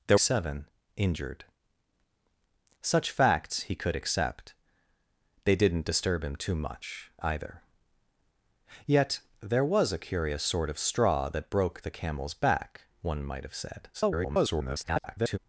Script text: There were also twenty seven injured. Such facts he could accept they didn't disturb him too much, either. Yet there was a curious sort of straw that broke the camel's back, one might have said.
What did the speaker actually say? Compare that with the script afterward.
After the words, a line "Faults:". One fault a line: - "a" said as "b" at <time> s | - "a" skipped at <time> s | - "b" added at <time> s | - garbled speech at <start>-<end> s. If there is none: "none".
There seven injured. Such facts he could accept they didn't disturb him too much, either. Yet there was a curious sort of straw that broke the camel's back, one might have said. [garbled]
Faults:
- "were also twenty" skipped at 0.2 s
- garbled speech at 13.9-15.4 s